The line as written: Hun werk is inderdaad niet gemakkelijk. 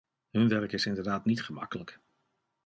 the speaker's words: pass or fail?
pass